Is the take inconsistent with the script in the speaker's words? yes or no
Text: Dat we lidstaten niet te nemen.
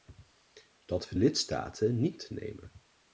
no